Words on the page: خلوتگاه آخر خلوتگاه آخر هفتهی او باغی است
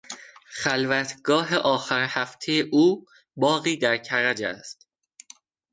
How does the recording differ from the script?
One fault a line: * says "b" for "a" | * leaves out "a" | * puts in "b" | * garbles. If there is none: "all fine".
* leaves out "خلوتگاه آخر"
* puts in "در کرج"